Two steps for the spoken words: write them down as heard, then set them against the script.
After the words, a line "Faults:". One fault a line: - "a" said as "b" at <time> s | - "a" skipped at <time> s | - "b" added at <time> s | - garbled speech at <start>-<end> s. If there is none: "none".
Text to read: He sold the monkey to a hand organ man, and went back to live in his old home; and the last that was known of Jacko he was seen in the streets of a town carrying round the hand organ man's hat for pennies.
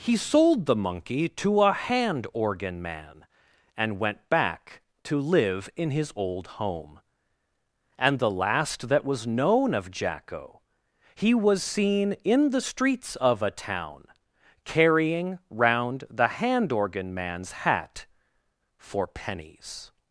He sold the monkey to a hand organ man, and went back to live in his old home; and the last that was known of Jacko he was seen in the streets of a town carrying round the hand organ man's hat for pennies.
Faults:
none